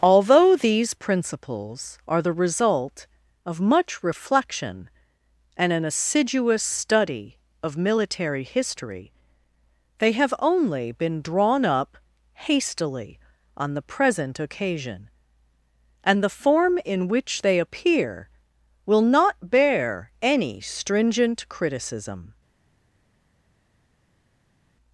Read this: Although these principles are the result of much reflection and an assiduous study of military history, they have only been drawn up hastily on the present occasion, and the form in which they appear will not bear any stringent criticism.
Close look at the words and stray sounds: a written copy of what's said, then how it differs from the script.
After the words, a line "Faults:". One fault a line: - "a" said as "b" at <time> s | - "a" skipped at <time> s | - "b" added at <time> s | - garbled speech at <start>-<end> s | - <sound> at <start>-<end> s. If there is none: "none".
Although these principles are the result of much reflection and an assiduous study of military history, they have only been drawn up hastily on the present occasion, and the form in which they appear will not bear any stringent criticism.
Faults:
none